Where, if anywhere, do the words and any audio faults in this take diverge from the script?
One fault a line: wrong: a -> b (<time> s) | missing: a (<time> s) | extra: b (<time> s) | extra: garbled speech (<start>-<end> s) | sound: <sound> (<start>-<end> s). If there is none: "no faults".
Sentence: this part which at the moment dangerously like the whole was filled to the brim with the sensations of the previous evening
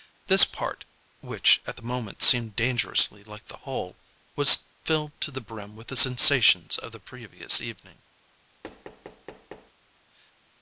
extra: seemed (2.2 s)
sound: thud (8.6-9.7 s)